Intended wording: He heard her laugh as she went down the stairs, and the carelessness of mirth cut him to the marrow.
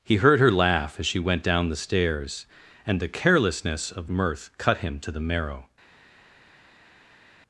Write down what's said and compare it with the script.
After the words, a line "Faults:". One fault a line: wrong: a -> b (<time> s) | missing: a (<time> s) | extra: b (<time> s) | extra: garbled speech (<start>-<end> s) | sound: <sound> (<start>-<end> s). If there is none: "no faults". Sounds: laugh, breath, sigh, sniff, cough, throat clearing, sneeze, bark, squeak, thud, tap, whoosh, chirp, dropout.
He heard her laugh as she went down the stairs, and the carelessness of mirth cut him to the marrow.
Faults:
no faults